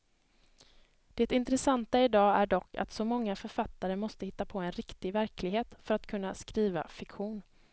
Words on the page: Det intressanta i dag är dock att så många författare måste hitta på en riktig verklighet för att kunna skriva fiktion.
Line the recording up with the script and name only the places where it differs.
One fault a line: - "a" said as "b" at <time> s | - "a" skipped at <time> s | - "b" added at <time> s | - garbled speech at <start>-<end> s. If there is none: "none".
none